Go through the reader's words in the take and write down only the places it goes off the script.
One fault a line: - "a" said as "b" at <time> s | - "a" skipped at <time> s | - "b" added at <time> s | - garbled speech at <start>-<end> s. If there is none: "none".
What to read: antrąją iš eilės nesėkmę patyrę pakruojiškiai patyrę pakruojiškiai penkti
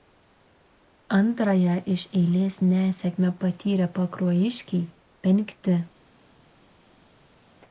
- "patyrę pakruojiškiai" skipped at 4.8 s